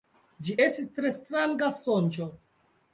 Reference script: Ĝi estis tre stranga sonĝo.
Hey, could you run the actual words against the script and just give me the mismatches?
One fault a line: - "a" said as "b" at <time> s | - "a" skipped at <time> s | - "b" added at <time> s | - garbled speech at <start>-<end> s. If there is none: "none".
none